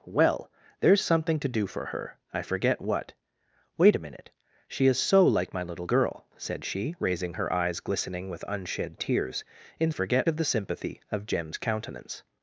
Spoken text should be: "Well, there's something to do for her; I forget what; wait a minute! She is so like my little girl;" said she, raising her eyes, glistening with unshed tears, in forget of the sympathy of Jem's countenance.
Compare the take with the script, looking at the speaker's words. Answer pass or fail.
pass